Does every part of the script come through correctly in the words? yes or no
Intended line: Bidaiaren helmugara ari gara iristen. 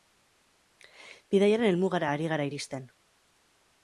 yes